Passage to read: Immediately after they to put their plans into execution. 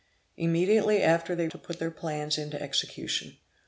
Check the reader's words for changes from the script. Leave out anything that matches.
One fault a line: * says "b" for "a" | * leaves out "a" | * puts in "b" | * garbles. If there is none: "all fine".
all fine